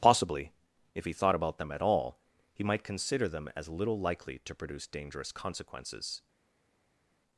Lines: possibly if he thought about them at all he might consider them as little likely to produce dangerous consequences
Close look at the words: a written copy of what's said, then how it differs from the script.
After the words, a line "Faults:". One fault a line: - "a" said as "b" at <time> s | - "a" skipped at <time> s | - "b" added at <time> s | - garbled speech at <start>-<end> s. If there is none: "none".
possibly if he thought about them at all he might consider them as little likely to produce dangerous consequences
Faults:
none